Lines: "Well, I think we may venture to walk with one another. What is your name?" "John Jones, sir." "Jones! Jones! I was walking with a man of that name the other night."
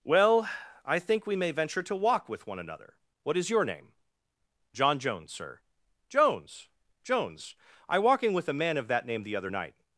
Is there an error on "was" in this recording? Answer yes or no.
yes